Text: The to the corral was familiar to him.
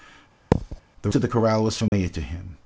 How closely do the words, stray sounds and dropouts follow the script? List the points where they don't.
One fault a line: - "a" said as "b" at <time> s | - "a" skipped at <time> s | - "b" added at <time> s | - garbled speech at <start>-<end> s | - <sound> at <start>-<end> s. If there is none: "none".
- thud at 0.5-0.8 s
- dropout at 1.9-1.9 s